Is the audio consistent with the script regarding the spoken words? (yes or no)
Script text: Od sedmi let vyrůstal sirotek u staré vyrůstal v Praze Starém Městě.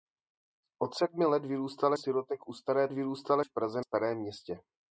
yes